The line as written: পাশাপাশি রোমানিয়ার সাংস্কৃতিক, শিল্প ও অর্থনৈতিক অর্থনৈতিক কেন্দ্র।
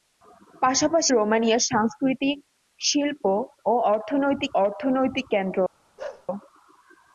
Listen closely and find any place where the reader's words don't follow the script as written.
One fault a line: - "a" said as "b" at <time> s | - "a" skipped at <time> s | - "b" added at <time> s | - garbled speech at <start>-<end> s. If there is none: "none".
none